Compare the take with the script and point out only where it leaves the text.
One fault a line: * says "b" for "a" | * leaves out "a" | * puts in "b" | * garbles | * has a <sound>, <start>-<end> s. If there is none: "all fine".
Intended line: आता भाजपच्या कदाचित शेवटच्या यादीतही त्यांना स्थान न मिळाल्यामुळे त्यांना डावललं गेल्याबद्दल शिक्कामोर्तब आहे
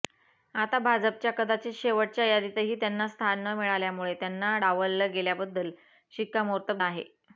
all fine